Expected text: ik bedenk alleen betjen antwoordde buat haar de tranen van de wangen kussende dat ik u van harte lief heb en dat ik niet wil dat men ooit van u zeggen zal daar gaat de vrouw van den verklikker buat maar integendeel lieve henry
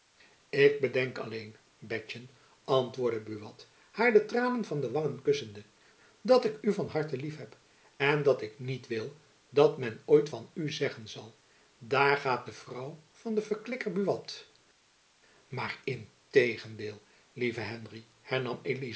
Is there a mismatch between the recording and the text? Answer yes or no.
no